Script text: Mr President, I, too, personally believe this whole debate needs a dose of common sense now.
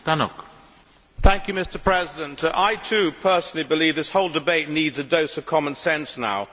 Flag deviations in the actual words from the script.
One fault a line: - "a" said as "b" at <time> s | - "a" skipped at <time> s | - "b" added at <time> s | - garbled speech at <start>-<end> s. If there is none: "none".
none